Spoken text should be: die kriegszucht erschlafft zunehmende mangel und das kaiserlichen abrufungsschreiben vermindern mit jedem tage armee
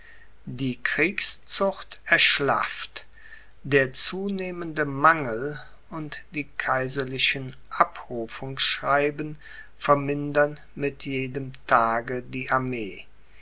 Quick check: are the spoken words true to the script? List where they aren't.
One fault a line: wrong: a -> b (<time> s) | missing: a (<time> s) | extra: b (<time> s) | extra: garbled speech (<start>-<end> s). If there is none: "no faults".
extra: der (3.6 s)
wrong: das -> die (6.3 s)
extra: die (12.2 s)